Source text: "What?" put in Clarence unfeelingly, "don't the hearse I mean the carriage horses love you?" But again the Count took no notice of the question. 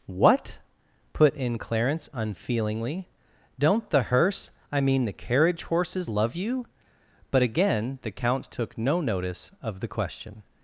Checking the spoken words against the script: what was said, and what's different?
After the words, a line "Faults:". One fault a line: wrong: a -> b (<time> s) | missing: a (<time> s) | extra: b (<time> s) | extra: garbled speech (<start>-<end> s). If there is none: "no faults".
"What?" put in Clarence unfeelingly, "don't the hearse I mean the carriage horses love you?" But again the Count took no notice of the question.
Faults:
no faults